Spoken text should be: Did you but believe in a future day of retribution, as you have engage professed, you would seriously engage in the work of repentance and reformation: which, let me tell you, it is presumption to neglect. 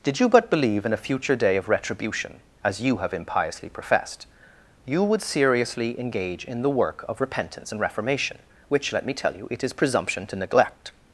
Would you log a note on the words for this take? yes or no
yes